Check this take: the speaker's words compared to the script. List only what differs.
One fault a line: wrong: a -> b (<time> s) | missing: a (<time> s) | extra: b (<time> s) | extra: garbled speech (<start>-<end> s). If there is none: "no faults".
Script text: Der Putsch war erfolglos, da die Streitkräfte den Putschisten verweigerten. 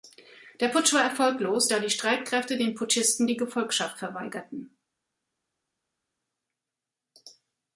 extra: die Gefolgschaft (3.2 s)